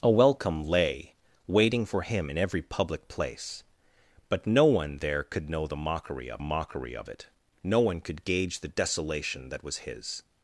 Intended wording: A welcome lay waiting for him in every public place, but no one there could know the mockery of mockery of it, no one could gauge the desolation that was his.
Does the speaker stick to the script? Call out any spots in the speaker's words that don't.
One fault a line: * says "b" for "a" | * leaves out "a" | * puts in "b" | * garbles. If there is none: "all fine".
all fine